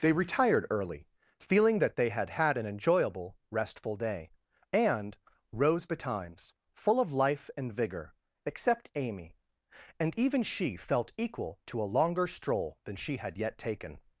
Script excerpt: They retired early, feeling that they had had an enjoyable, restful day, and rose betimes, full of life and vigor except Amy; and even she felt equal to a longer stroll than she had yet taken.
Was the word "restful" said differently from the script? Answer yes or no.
no